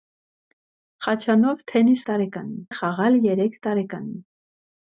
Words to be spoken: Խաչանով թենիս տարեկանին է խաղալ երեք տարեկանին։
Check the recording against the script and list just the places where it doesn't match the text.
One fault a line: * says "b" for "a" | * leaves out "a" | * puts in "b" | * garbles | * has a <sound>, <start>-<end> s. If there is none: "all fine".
all fine